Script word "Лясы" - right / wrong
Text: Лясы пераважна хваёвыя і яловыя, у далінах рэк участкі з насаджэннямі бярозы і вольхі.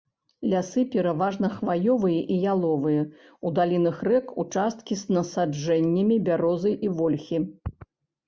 right